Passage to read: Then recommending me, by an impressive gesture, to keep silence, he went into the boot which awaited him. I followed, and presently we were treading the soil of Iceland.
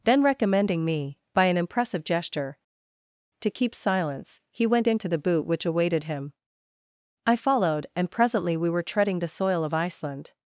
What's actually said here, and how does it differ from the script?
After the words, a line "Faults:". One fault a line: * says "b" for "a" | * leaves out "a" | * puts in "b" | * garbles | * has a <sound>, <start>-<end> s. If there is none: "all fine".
Then recommending me, by an impressive gesture, to keep silence, he went into the boot which awaited him. I followed, and presently we were treading the soil of Iceland.
Faults:
all fine